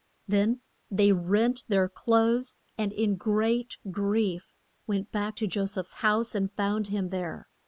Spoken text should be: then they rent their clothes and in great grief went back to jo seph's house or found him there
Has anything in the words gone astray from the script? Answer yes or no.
yes